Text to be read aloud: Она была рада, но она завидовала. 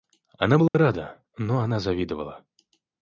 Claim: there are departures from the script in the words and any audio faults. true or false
true